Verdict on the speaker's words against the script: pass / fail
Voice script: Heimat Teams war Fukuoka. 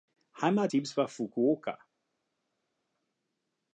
pass